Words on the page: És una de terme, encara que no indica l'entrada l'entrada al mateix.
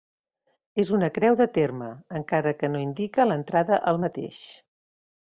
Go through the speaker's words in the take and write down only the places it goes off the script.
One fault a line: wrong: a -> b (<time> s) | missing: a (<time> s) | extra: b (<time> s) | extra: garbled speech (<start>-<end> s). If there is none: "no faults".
extra: creu (1.2 s)
missing: l'entrada (3.8 s)